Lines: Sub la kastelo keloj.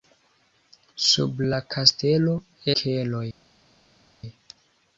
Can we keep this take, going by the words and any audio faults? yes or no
yes